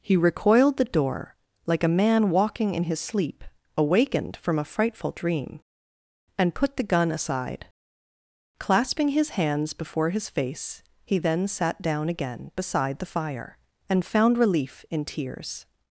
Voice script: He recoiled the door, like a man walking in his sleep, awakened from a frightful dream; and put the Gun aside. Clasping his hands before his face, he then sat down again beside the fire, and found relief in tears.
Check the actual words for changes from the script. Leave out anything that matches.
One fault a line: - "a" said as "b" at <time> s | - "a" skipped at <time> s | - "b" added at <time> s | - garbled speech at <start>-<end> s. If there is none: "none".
none